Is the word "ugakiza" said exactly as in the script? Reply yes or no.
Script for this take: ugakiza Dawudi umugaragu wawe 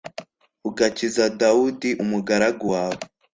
yes